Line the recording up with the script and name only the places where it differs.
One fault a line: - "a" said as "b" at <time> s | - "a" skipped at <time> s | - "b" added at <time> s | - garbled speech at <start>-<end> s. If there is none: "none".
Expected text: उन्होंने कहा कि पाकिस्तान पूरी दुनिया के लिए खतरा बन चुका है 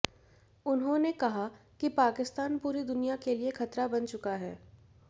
none